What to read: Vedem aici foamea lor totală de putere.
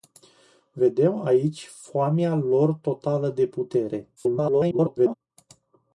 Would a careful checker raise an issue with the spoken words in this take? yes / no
yes